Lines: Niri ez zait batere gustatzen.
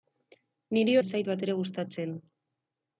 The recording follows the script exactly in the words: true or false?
true